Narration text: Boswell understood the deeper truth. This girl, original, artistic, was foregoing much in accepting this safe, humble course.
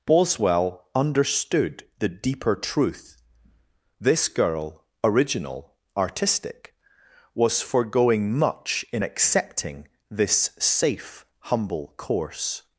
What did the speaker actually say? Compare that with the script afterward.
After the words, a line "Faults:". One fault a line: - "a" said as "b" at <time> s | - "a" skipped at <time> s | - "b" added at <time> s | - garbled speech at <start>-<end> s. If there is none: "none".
Boswell understood the deeper truth. This girl, original, artistic, was foregoing much in accepting this safe, humble course.
Faults:
none